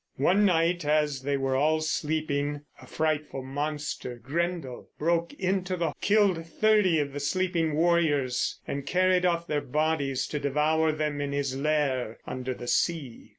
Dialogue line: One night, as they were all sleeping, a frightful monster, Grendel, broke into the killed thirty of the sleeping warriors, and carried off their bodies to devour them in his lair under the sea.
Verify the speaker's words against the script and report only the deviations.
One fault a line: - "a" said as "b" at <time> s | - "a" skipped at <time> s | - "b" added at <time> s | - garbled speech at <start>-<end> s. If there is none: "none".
none